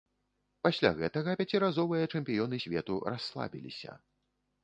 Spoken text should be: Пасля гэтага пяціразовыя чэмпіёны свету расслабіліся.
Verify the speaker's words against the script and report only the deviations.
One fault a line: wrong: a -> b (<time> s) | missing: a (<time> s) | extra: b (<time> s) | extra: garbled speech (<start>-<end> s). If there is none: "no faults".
no faults